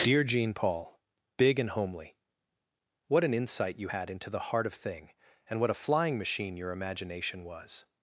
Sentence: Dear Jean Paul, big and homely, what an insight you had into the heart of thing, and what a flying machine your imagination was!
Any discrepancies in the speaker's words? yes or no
no